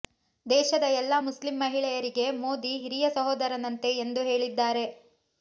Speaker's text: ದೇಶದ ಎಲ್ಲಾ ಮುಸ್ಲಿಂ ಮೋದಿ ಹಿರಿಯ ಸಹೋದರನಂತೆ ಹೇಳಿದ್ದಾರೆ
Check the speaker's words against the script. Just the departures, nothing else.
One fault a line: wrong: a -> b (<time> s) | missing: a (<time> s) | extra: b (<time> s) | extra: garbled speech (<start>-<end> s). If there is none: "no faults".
extra: ಮಹಿಳೆಯರಿಗೆ (1.6 s)
extra: ಎಂದು (4.0 s)